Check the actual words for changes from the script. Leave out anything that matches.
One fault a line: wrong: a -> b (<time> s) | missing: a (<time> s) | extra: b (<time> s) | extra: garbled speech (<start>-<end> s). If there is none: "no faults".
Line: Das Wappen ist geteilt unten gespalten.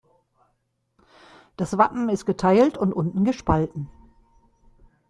extra: und (2.8 s)